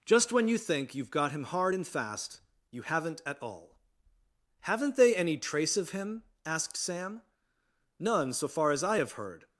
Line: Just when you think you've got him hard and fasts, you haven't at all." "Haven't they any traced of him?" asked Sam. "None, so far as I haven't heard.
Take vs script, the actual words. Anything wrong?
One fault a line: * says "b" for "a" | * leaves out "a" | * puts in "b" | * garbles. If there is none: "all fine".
* says "fast" for "fasts"
* says "trace" for "traced"
* says "have" for "haven't"